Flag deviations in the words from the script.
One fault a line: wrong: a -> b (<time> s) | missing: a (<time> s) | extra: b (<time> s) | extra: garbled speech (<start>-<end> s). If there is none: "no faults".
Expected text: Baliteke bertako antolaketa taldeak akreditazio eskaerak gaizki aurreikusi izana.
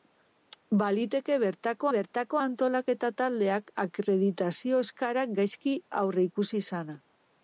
extra: bertako (1.9 s)